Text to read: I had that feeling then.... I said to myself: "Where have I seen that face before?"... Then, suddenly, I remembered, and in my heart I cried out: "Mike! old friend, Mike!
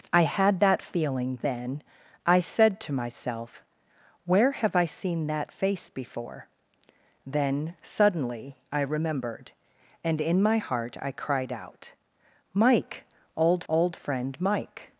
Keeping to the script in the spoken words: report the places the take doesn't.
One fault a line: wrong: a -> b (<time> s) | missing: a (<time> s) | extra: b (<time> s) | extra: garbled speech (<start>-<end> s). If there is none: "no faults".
extra: old (13.7 s)